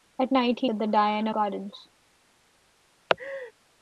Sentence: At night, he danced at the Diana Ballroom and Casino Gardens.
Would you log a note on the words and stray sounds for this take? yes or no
yes